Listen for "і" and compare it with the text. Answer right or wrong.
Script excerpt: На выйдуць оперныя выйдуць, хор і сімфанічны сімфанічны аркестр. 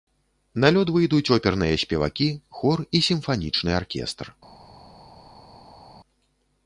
right